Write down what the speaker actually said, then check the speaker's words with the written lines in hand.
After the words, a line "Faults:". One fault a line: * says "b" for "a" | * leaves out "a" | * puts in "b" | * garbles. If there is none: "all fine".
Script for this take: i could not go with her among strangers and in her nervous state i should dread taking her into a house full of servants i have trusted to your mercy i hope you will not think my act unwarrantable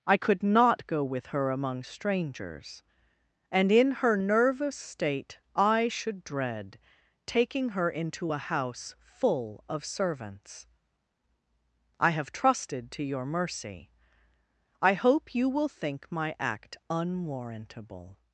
i could not go with her among strangers and in her nervous state i should dread taking her into a house full of servants i have trusted to your mercy i hope you will think my act unwarrantable
Faults:
* leaves out "not"